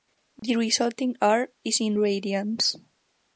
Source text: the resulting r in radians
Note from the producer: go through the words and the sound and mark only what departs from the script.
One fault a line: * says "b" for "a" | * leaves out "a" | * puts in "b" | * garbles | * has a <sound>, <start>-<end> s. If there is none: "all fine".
* has a dropout, 0.4-0.4 s
* puts in "is"